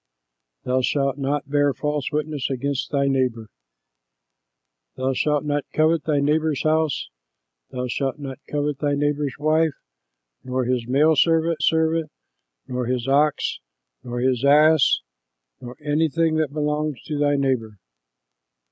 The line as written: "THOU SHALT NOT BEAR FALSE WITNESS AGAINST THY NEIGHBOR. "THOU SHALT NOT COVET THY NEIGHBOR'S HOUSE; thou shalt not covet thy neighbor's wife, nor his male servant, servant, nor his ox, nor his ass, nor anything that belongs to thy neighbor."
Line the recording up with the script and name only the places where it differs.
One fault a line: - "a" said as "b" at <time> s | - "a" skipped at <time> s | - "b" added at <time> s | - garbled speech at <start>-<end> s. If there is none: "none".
none